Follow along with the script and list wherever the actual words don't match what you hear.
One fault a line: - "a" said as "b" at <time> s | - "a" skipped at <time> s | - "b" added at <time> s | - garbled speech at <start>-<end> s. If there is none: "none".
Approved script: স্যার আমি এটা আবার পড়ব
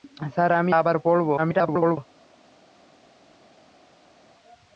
- "এটা" skipped at 0.7 s
- garbled speech at 1.4-2.0 s